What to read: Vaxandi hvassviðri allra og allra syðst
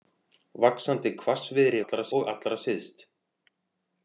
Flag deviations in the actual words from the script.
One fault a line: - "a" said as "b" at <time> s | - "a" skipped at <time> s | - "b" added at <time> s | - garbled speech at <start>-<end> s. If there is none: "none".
none